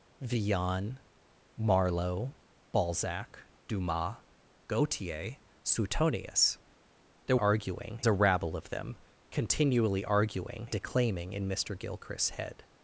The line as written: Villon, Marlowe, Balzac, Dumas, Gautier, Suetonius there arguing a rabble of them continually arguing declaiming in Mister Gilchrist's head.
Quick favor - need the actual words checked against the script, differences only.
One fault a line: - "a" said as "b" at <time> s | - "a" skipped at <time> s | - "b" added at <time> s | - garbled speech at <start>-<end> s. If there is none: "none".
none